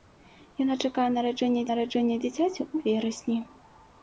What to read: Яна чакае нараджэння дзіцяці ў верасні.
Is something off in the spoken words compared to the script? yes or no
yes